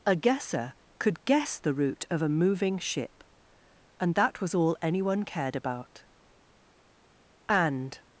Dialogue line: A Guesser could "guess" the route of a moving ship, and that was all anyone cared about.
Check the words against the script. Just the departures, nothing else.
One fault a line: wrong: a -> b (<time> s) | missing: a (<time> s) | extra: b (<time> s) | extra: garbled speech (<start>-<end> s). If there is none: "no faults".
extra: And (7.5 s)